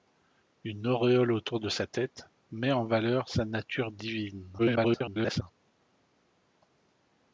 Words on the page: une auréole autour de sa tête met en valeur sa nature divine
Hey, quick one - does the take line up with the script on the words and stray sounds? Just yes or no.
no